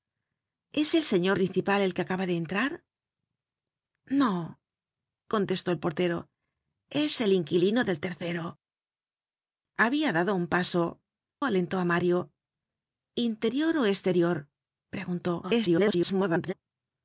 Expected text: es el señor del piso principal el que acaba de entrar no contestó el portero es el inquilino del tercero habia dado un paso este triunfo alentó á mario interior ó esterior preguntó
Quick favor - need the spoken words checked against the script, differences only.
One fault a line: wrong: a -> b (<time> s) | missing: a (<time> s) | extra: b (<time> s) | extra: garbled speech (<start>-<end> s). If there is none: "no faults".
missing: del piso (1.4 s)
missing: este triunfo (11.0 s)
extra: garbled speech (15.4-16.5 s)